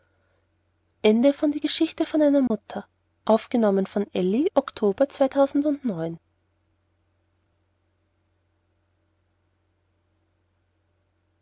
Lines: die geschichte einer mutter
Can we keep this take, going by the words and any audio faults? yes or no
no